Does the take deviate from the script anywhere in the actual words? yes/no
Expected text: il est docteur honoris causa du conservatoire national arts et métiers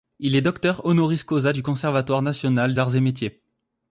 no